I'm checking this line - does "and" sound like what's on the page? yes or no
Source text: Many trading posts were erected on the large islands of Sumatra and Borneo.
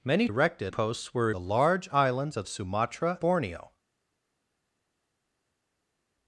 no